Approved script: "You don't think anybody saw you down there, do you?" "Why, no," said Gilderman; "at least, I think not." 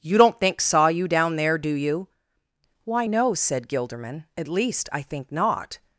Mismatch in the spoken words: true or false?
true